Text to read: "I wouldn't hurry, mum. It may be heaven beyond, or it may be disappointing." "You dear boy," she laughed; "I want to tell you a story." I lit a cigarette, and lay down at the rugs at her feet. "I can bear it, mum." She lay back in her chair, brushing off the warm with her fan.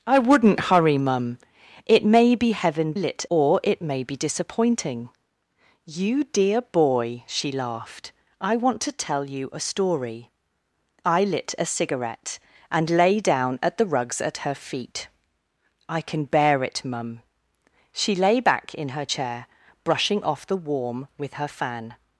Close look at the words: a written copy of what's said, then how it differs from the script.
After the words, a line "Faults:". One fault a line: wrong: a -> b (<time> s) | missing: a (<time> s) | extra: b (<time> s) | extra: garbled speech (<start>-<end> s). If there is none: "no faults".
"I wouldn't hurry, mum. It may be heaven lit, or it may be disappointing." "You dear boy," she laughed; "I want to tell you a story." I lit a cigarette, and lay down at the rugs at her feet. "I can bear it, mum." She lay back in her chair, brushing off the warm with her fan.
Faults:
wrong: beyond -> lit (2.9 s)